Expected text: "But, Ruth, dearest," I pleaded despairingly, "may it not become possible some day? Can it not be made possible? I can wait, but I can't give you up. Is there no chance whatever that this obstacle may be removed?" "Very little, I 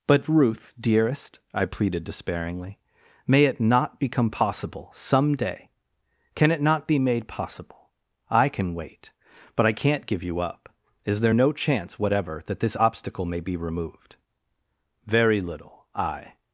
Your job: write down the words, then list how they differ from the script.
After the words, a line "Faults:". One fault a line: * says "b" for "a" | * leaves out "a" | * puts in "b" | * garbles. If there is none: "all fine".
"But, Ruth, dearest," I pleaded despairingly, "may it not become possible some day? Can it not be made possible? I can wait, but I can't give you up. Is there no chance whatever that this obstacle may be removed?" "Very little, I
Faults:
all fine